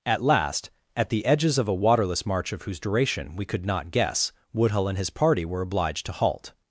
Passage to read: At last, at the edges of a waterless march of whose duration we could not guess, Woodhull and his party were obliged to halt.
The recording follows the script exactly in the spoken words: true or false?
true